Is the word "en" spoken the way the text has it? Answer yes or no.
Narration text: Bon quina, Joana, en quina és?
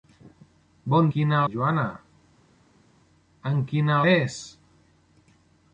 yes